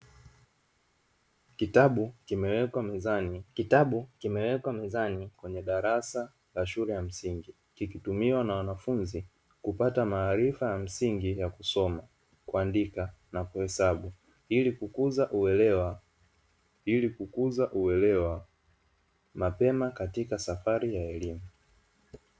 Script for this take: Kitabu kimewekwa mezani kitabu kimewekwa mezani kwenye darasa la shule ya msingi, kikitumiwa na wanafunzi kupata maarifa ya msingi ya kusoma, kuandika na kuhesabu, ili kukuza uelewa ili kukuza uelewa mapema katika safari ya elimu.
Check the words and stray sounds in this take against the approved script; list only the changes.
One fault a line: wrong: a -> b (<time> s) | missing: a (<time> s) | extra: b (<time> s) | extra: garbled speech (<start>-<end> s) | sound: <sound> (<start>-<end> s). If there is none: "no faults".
no faults